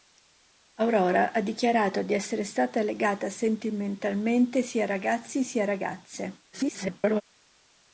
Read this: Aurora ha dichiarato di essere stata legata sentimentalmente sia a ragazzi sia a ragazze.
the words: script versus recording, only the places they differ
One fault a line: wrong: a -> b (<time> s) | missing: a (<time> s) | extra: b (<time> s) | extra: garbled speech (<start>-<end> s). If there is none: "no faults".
extra: garbled speech (6.5-7.2 s)